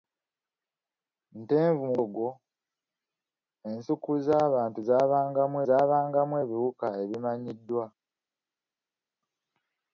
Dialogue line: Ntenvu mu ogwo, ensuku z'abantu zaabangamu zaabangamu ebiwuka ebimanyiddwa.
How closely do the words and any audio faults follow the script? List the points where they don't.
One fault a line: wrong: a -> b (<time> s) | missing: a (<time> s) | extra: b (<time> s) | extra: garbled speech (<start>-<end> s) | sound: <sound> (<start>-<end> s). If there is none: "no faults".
no faults